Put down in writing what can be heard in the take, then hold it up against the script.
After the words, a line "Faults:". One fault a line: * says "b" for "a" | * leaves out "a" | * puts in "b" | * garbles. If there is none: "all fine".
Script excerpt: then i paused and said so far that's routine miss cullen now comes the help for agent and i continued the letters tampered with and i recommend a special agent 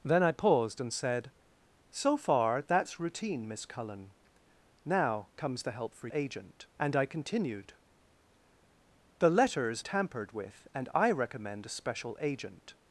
then i paused and said so far that's routine miss cullen now comes the help for agent and i continued the letters tampered with and i recommend a special agent
Faults:
all fine